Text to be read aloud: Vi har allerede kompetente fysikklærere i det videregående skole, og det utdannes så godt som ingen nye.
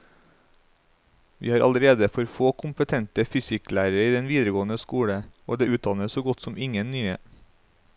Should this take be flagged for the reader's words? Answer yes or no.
yes